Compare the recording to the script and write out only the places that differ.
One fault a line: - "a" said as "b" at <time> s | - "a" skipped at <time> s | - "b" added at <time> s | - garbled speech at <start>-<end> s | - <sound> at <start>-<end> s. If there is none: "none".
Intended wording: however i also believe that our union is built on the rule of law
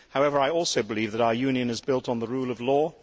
none